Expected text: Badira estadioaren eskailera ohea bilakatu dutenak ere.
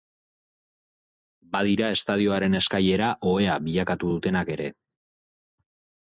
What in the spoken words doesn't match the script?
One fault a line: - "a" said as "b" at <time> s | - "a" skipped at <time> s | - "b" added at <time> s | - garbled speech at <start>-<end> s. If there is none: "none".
none